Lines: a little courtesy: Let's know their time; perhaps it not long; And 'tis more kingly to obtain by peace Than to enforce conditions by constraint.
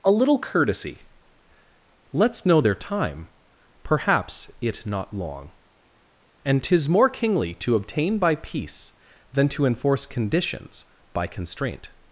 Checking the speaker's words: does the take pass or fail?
pass